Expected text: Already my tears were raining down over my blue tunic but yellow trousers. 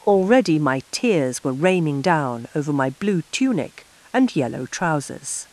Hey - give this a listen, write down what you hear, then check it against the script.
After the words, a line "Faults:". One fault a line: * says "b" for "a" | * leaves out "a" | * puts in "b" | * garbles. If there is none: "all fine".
Already my tears were raining down over my blue tunic and yellow trousers.
Faults:
* says "and" for "but"